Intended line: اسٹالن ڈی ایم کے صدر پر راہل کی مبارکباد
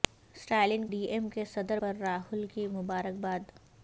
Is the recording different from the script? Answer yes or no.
no